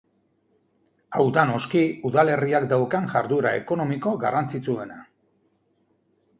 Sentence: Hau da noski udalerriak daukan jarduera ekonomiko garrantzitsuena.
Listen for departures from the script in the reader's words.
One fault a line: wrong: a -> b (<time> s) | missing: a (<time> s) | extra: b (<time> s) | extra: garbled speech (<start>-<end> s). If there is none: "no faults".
no faults